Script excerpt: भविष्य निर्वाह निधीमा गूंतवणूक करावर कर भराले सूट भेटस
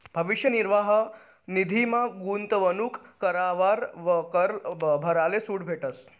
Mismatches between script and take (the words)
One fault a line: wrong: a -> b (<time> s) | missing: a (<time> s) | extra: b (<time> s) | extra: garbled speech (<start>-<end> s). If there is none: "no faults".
no faults